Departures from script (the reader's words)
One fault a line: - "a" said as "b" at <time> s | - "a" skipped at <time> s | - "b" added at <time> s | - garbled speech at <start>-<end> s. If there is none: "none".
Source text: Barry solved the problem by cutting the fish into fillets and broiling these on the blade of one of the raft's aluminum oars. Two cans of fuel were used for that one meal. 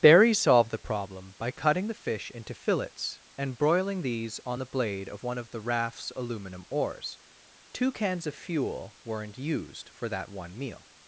- "were" said as "weren't" at 9.0 s